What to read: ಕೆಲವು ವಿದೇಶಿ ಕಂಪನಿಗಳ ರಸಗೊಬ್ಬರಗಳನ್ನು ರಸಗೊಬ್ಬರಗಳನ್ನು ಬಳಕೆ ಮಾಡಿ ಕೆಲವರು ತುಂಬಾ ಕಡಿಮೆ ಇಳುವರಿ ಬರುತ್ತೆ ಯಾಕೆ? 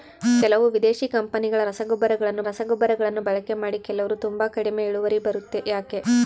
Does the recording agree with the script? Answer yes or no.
yes